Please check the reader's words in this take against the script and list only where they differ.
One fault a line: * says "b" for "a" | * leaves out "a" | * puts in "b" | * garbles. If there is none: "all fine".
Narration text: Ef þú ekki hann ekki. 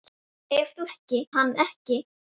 all fine